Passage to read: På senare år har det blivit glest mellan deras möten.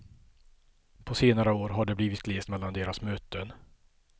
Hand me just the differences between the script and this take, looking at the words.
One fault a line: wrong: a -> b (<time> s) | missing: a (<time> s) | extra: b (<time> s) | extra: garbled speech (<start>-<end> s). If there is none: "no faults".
no faults